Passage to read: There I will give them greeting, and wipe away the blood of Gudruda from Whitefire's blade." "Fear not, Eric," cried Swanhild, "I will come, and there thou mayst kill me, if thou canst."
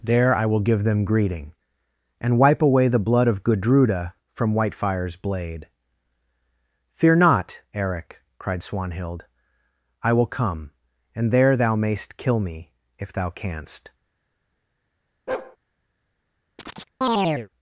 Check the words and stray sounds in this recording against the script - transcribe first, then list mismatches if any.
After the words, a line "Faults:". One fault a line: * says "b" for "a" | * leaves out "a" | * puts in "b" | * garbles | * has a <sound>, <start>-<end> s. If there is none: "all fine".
There I will give them greeting, and wipe away the blood of Gudruda from Whitefire's blade." "Fear not, Eric," cried Swanhild, "I will come, and there thou mayst kill me, if thou canst."
Faults:
* has a bark, 15.3-15.6 s
* has a chirp, 16.6-17.5 s